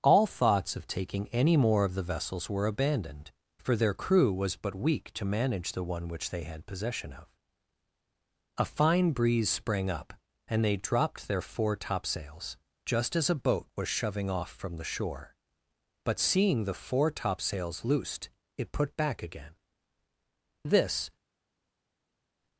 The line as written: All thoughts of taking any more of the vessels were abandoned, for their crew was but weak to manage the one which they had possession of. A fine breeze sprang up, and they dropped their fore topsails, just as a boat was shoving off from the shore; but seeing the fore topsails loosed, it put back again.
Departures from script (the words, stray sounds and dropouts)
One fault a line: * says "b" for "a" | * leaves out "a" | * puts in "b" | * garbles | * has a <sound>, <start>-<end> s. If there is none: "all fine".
* puts in "This"